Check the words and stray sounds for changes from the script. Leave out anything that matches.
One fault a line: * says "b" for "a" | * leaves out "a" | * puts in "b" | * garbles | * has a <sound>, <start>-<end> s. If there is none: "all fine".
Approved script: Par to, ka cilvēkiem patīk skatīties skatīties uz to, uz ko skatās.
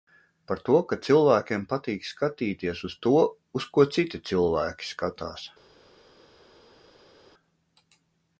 * leaves out "skatīties"
* puts in "citi cilvēki"